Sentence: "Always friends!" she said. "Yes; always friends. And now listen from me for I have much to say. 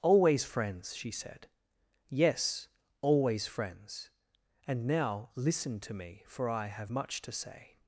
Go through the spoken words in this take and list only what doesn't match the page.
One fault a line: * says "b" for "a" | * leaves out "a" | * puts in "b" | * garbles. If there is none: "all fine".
* says "to" for "from"